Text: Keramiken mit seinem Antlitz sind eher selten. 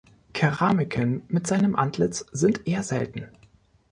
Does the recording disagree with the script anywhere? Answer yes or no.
no